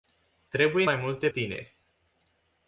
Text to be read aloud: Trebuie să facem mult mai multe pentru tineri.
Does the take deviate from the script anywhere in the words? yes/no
yes